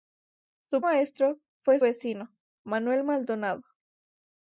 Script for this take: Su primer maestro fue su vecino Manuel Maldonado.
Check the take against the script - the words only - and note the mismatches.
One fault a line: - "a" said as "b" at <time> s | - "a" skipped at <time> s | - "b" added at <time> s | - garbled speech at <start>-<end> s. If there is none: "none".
- "primer" skipped at 0.8 s
- "su" skipped at 1.8 s